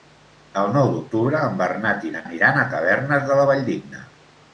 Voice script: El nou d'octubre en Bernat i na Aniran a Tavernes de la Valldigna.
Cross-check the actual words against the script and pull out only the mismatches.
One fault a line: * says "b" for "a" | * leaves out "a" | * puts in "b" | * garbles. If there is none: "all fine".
all fine